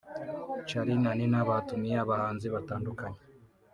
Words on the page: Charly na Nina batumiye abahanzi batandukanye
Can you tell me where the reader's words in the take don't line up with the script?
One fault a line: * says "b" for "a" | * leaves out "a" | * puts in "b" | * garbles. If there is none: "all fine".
all fine